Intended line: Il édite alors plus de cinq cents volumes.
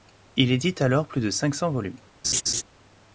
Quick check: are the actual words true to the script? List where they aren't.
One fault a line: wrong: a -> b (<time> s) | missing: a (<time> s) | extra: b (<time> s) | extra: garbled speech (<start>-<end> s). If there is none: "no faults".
no faults